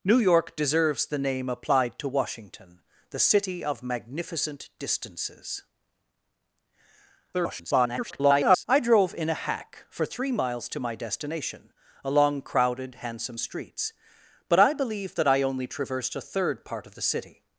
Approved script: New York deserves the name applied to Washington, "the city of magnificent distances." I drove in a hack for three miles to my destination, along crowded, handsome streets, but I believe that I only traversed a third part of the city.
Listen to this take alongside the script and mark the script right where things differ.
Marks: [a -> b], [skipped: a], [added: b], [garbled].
New York deserves the name applied to Washington, "the city of magnificent distances." [garbled] I drove in a hack for three miles to my destination, along crowded, handsome streets, but I believe that I only traversed a third part of the city.